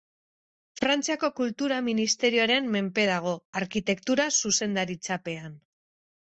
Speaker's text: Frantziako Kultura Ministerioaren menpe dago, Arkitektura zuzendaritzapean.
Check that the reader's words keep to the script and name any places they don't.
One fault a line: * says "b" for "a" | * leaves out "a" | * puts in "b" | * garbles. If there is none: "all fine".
all fine